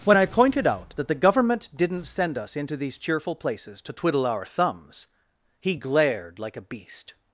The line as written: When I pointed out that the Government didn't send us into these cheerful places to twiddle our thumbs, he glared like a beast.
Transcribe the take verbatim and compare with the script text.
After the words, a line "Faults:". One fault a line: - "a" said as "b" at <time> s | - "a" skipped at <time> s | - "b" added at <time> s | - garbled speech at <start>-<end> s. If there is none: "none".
When I pointed out that the Government didn't send us into these cheerful places to twiddle our thumbs, he glared like a beast.
Faults:
none